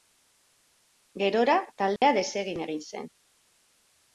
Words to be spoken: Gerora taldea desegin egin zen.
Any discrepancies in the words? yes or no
no